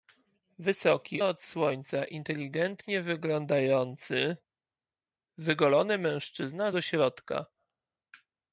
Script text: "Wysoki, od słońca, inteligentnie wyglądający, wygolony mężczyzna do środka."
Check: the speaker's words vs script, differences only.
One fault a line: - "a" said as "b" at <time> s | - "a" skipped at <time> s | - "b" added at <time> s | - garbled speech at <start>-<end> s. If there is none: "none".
none